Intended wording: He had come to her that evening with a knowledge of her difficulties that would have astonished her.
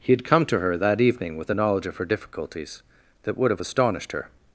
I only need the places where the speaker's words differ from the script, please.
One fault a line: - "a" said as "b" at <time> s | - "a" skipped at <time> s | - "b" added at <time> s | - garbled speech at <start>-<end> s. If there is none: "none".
- "a" said as "the" at 1.5 s